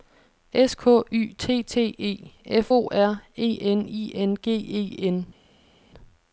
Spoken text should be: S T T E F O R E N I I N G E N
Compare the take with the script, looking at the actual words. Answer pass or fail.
fail